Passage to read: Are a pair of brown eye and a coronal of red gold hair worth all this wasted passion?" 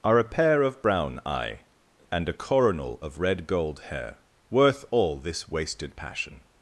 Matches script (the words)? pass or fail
pass